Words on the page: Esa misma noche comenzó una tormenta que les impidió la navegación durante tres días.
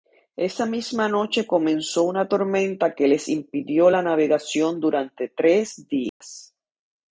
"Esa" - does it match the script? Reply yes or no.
yes